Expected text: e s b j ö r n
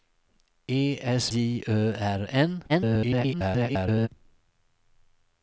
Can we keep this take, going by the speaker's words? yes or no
no